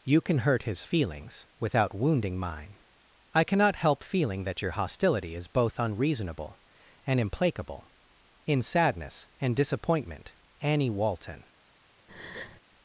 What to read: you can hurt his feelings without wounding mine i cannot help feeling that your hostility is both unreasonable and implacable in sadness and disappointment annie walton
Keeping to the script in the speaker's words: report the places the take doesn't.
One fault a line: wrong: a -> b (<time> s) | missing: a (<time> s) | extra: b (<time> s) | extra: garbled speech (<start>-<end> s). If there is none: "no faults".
no faults